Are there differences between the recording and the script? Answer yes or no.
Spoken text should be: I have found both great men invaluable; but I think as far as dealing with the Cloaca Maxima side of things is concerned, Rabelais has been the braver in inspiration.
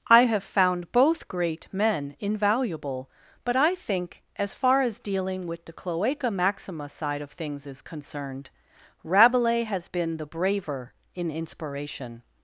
no